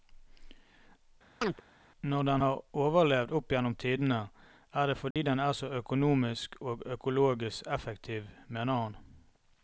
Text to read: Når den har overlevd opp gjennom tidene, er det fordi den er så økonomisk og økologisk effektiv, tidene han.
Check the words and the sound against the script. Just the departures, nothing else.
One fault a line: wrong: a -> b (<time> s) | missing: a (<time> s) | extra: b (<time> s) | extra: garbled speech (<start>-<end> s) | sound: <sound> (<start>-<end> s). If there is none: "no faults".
sound: chirp (1.4-1.6 s)
sound: dropout (5.1-5.2 s)
wrong: tidene -> mener (8.5 s)